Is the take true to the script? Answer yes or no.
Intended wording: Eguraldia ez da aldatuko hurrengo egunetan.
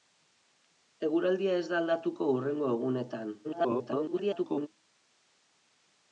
no